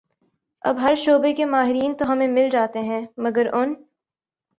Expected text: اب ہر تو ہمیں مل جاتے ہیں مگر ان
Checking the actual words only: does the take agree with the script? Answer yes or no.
no